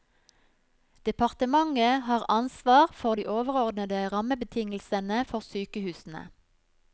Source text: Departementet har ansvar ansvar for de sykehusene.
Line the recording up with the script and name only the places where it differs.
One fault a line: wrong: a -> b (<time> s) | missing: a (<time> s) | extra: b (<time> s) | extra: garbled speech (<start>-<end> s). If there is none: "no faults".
missing: ansvar (2.9 s)
extra: overordnede rammebetingelsene for (3.3 s)